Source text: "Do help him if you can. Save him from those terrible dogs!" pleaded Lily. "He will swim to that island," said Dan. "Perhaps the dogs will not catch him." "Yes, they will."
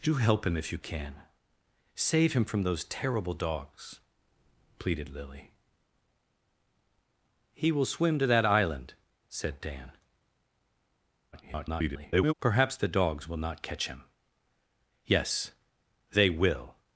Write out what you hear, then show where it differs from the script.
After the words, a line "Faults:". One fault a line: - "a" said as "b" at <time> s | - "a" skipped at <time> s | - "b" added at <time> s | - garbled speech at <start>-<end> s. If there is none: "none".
"Do help him if you can. Save him from those terrible dogs!" pleaded Lily. "He will swim to that island," said Dan. [garbled] "Perhaps the dogs will not catch him." "Yes, they will."
Faults:
- garbled speech at 11.3-12.3 s